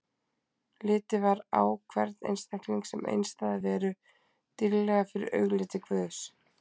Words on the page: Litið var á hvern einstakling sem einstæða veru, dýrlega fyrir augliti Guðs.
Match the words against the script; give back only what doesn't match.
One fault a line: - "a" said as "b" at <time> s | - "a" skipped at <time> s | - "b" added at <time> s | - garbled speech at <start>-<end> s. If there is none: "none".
none